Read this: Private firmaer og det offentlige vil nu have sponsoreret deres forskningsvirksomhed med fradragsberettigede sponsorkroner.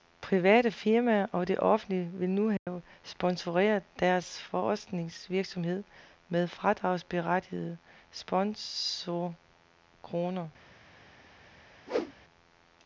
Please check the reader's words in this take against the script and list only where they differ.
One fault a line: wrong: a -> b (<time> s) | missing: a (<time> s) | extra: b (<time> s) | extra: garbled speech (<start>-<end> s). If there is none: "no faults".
no faults